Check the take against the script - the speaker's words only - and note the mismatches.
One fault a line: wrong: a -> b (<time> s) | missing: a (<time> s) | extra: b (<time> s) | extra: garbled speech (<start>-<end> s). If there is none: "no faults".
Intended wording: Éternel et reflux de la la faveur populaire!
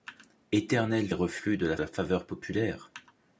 no faults